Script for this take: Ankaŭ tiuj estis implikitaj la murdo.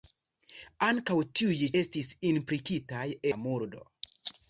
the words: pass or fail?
pass